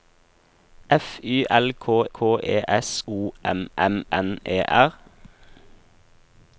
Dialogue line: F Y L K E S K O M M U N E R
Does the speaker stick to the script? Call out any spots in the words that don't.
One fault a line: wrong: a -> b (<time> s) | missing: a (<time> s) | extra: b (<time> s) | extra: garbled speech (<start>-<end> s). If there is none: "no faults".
extra: K (2.1 s)
missing: K (3.0 s)
missing: U (4.0 s)